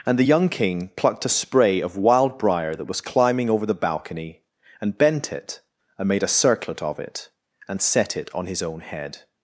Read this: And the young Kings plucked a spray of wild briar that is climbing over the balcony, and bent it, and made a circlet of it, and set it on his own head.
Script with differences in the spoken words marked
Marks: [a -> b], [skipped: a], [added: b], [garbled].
And the young [Kings -> King] plucked a spray of wild briar that [is -> was] climbing over the balcony, and bent it, and made a circlet of it, and set it on his own head.